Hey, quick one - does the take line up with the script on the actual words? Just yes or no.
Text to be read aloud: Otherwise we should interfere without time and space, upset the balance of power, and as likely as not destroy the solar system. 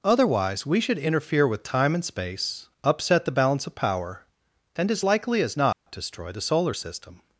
no